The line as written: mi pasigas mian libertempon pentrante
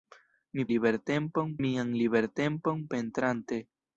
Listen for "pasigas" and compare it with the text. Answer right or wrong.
wrong